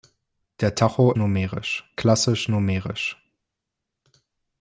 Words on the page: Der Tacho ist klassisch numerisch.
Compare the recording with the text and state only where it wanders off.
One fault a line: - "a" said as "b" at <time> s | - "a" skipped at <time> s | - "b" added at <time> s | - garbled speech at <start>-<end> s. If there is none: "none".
- "ist" said as "numerisch" at 1.2 s